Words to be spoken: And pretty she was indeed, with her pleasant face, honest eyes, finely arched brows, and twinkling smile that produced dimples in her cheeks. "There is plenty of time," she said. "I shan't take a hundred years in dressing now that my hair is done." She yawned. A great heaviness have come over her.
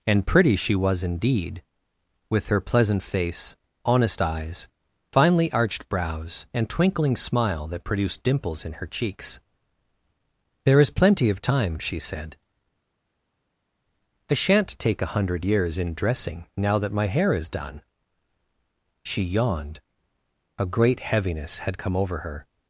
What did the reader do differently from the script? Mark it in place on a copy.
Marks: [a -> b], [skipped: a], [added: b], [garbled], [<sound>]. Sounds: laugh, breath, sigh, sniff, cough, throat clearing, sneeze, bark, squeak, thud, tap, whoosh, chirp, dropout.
And pretty she was indeed, with her pleasant face, honest eyes, finely arched brows, and twinkling smile that produced dimples in her cheeks. "There is plenty of time," she said. "I shan't take a hundred years in dressing now that my hair is done." She yawned. A great heaviness [have -> had] come over her.